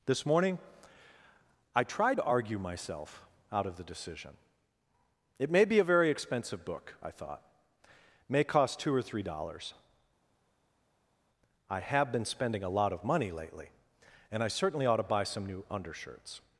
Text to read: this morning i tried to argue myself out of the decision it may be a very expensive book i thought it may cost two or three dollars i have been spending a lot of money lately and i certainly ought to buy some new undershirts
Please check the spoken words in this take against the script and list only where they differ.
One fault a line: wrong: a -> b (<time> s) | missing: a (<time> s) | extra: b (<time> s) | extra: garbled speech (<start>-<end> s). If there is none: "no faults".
no faults